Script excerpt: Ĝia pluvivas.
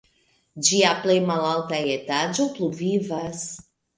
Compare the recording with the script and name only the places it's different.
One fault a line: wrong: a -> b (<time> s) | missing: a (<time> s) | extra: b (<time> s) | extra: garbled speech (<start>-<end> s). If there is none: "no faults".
extra: plej malalta etaĝo (1.0 s)